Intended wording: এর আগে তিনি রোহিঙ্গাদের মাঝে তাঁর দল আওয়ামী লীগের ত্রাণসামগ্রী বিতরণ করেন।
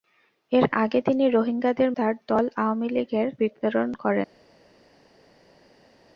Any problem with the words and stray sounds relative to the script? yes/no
yes